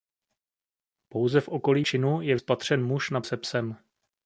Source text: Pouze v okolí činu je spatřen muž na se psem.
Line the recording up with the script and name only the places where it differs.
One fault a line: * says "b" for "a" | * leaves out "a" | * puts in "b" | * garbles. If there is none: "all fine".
all fine